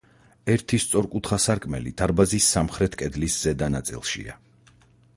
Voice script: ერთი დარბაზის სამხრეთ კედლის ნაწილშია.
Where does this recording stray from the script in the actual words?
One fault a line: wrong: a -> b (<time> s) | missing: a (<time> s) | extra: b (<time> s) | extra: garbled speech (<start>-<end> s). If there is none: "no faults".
extra: სწორკუთხა სარკმელი (0.8 s)
extra: ზედა (3.5 s)